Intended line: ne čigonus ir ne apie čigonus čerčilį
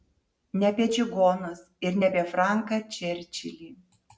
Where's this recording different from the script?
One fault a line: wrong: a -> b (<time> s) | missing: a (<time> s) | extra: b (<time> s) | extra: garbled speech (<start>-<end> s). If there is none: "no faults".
extra: apie (0.7 s)
wrong: čigonus -> franką (2.4 s)